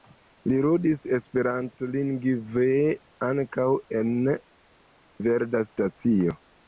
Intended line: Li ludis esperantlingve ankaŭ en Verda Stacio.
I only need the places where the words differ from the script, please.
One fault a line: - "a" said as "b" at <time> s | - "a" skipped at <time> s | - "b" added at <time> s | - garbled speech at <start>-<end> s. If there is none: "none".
none